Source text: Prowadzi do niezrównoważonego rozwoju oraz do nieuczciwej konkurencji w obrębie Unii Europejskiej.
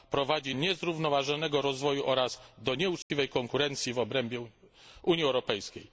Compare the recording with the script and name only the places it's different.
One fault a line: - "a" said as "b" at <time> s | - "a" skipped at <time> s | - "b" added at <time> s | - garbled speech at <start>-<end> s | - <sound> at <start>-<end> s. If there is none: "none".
- "do" skipped at 0.6 s
- dropout at 3.0-3.1 s